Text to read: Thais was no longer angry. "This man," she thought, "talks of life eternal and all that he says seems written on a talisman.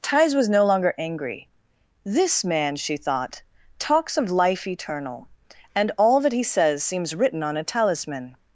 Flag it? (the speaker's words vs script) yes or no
no